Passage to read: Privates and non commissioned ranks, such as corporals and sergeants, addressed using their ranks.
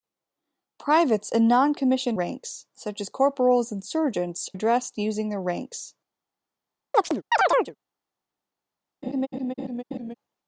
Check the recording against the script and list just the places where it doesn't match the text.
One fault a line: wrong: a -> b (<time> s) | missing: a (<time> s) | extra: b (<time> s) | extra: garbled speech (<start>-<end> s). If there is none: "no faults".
no faults